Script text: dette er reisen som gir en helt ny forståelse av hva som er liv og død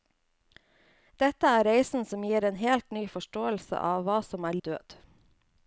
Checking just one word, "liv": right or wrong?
wrong